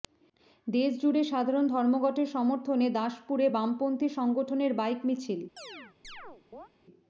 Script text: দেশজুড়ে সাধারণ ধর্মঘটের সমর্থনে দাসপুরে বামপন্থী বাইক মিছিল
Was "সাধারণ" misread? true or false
false